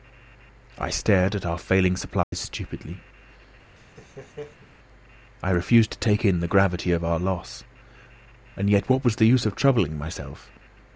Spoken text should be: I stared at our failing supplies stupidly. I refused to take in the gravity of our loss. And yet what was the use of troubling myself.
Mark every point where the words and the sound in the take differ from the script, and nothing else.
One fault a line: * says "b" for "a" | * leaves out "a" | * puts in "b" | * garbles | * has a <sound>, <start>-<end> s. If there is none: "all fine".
* has a dropout, 2.2-2.3 s
* has a laugh, 3.8-4.7 s